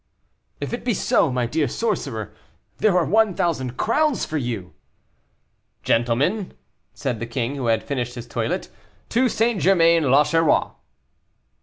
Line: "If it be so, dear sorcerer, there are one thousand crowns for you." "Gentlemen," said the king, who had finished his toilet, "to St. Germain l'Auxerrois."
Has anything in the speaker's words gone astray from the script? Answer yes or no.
yes